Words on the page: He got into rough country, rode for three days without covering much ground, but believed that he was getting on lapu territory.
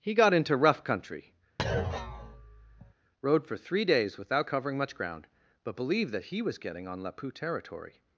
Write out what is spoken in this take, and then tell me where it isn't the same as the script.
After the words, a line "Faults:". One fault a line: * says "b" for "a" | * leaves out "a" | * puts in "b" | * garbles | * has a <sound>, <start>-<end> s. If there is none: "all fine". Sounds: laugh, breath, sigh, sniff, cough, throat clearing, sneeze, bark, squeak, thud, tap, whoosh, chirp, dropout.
He got into rough country, rode for three days without covering much ground, but believed that he was getting on lapu territory.
Faults:
* has a thud, 1.6-2.9 s